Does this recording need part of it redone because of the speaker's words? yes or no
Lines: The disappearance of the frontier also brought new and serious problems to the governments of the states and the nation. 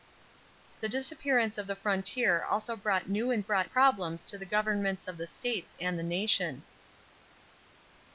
yes